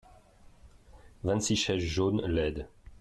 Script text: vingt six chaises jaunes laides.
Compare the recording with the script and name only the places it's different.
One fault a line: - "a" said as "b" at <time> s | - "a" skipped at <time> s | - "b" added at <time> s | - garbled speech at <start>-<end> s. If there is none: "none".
none